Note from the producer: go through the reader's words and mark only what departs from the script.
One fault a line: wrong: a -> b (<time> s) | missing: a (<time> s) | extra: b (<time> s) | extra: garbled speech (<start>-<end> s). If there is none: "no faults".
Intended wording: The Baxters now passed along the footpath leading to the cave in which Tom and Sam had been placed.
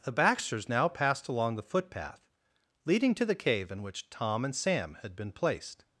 no faults